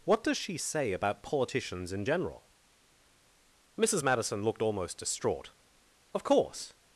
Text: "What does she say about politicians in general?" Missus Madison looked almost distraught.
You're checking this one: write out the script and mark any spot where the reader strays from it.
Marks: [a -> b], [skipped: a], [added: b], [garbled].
"What does she say about politicians in general?" Missus Madison looked almost distraught. [added: Of course]